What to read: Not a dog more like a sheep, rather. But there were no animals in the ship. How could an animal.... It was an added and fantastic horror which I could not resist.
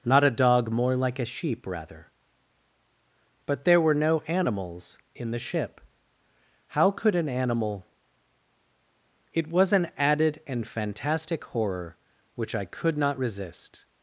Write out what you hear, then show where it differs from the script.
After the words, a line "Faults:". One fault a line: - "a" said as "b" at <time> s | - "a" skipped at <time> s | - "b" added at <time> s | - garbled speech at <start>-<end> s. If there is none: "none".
Not a dog more like a sheep, rather. But there were no animals in the ship. How could an animal.... It was an added and fantastic horror which I could not resist.
Faults:
none